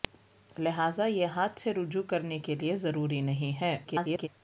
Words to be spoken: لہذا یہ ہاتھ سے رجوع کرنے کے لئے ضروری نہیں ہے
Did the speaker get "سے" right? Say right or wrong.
right